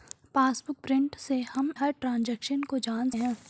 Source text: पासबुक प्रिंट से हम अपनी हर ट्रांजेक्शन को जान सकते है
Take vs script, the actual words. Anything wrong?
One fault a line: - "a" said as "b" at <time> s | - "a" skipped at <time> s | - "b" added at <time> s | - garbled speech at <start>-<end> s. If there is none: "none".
- "अपनी" skipped at 1.7 s
- "सकते" skipped at 3.1 s